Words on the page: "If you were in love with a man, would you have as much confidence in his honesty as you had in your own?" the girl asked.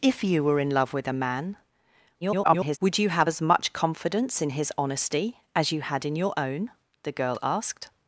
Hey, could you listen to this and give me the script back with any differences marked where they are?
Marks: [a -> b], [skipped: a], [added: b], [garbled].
"If you were in love with a man, [garbled] would you have as much confidence in his honesty as you had in your own?" the girl asked.